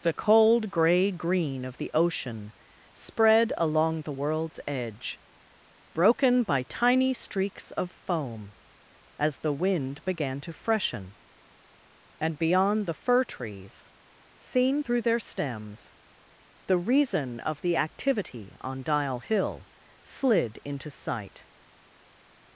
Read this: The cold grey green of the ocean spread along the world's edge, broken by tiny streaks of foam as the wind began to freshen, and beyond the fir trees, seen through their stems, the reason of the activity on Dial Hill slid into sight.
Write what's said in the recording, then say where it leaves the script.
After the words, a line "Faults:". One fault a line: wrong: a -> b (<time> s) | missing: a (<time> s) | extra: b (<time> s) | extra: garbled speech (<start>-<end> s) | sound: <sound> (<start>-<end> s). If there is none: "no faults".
The cold grey green of the ocean spread along the world's edge, broken by tiny streaks of foam as the wind began to freshen, and beyond the fir trees, seen through their stems, the reason of the activity on Dial Hill slid into sight.
Faults:
no faults